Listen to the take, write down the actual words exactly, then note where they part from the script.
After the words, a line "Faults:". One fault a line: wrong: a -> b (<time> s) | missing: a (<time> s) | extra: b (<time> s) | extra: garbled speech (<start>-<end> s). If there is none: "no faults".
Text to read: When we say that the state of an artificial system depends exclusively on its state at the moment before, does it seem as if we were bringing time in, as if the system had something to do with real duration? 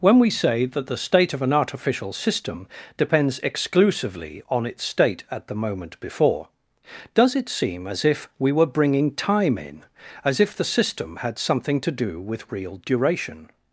When we say that the state of an artificial system depends exclusively on its state at the moment before, does it seem as if we were bringing time in, as if the system had something to do with real duration?
Faults:
no faults